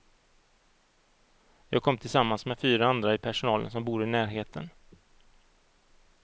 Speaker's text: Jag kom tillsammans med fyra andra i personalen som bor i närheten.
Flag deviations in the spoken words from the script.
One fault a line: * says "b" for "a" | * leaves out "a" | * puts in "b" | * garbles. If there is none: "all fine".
all fine